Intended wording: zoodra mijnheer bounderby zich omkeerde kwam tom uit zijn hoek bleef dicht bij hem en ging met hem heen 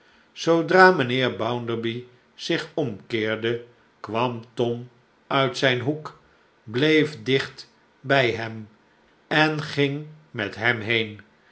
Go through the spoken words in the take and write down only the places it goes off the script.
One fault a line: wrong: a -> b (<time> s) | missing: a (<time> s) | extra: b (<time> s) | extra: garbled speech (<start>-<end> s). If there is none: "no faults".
no faults